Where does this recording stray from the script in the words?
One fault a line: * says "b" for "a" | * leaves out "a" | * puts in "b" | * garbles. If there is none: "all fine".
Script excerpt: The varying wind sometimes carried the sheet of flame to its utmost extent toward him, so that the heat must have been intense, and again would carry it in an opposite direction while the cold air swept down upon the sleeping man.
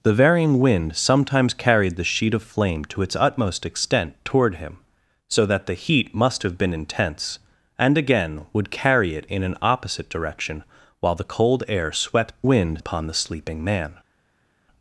* says "wind" for "down"